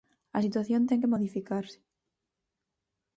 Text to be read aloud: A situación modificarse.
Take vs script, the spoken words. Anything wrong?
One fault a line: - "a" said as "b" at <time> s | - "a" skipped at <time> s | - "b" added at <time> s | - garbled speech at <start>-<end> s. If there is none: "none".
- "ten que" added at 0.9 s